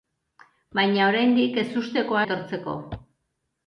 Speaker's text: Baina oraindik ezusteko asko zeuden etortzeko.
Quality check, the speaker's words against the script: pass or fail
fail